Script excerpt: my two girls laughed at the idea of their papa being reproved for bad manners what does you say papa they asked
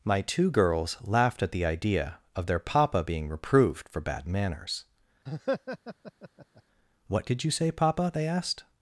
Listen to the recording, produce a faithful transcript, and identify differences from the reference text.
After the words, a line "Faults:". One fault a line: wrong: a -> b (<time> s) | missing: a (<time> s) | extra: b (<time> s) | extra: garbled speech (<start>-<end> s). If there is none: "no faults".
my two girls laughed at the idea of their papa being reproved for bad manners what did you say papa they asked
Faults:
wrong: does -> did (7.2 s)